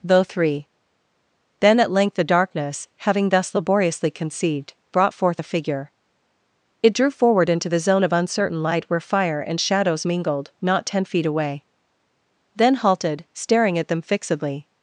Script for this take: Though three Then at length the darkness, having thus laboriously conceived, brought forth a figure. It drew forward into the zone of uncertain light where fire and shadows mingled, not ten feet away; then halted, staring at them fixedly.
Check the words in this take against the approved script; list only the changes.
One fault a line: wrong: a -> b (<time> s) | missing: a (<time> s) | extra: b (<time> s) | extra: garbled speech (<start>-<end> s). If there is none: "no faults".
no faults